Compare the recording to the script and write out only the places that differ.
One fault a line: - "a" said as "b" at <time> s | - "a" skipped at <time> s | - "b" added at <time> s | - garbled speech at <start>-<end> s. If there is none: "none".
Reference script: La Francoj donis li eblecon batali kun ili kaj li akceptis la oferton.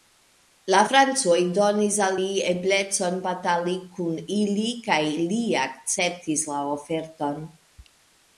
- "al" added at 2.1 s